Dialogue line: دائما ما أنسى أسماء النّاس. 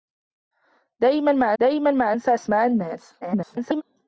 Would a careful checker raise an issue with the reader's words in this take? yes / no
yes